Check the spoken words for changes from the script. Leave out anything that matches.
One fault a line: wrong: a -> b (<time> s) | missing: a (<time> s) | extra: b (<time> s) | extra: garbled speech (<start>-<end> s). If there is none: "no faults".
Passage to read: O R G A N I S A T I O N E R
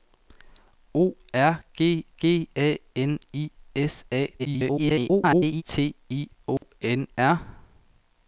extra: G (2.2 s)
extra: garbled speech (4.4-5.6 s)
missing: E (7.1 s)